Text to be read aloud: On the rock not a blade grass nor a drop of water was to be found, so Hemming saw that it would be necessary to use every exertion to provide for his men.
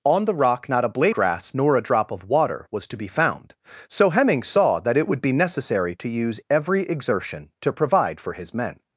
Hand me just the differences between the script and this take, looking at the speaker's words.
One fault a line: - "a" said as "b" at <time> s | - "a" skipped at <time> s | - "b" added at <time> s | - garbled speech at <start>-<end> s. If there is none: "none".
none